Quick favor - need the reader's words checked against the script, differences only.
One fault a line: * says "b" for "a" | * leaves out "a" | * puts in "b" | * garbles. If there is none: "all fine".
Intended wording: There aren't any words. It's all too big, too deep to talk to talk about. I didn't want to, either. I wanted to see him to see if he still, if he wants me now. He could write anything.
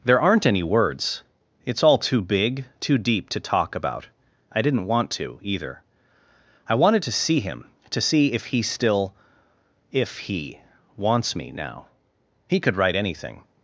* leaves out "to talk"